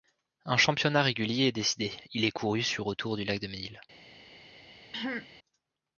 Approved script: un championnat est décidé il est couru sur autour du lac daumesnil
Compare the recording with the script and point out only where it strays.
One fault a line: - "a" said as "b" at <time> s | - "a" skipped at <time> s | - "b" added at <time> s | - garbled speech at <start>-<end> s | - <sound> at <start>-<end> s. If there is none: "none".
- "régulier" added at 1.0 s
- throat clearing at 4.9-5.3 s